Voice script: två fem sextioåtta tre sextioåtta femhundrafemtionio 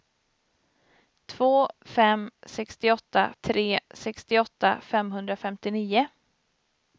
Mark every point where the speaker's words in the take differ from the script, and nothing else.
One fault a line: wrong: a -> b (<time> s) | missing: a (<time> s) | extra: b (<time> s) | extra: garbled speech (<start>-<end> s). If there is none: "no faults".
no faults